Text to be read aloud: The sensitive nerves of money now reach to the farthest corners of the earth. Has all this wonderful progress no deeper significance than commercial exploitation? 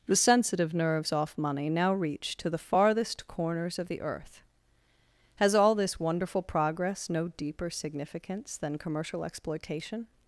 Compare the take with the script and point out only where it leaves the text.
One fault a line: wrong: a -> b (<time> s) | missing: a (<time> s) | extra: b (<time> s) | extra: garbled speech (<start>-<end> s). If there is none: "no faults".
wrong: of -> off (1.1 s)